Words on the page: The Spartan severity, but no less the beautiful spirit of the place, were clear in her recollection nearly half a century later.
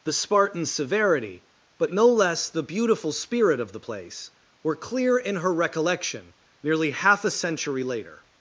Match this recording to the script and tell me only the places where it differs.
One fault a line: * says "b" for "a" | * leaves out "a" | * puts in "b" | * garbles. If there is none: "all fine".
all fine